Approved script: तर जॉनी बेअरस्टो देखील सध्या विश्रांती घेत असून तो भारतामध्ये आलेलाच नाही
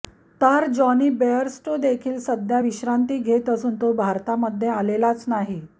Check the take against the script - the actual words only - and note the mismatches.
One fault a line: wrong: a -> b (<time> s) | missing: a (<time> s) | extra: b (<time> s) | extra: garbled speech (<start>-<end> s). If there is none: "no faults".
no faults